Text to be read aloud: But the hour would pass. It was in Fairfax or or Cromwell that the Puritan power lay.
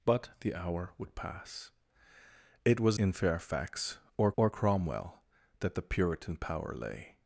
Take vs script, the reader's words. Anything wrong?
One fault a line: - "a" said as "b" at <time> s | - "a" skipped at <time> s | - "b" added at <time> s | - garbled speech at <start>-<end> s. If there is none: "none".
none